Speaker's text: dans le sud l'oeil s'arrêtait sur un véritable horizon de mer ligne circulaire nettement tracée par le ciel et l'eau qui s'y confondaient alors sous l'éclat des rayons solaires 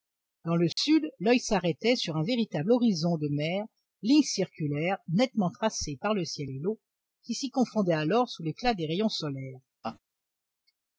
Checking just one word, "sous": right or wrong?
right